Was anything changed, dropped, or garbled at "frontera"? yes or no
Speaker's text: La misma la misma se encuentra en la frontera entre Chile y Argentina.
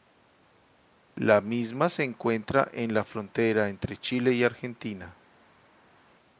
no